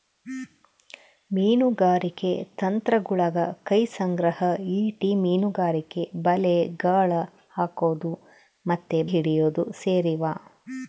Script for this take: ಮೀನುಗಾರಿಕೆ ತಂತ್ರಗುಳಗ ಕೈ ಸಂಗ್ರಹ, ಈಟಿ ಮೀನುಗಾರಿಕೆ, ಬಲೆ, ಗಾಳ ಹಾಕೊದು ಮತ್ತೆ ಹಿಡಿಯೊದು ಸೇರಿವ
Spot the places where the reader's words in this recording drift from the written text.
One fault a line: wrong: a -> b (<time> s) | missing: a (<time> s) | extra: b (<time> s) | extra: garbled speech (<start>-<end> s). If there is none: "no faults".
no faults